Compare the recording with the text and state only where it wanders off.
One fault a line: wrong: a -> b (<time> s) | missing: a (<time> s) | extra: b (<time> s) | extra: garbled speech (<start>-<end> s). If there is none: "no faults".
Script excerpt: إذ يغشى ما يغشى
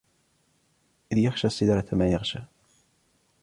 extra: السدرة (1.5 s)